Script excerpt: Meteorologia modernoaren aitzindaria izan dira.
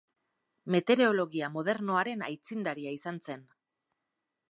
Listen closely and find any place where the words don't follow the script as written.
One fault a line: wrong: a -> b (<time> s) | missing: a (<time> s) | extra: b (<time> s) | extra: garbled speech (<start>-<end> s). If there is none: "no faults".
wrong: dira -> zen (3.3 s)